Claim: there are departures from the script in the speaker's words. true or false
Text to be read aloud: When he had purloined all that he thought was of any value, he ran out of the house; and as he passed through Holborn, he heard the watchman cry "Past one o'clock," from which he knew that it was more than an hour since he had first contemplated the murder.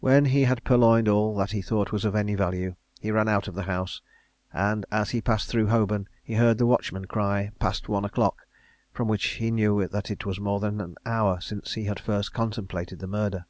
false